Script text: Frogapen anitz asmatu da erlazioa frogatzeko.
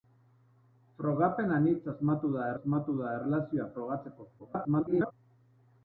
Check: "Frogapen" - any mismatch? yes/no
no